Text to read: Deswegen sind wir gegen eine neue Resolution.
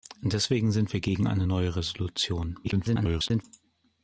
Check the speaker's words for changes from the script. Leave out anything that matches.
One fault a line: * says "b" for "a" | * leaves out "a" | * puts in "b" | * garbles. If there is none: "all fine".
* garbles